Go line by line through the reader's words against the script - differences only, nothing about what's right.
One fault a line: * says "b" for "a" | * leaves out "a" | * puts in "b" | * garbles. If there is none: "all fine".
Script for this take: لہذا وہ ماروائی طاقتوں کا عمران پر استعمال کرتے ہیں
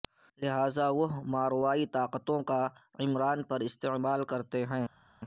all fine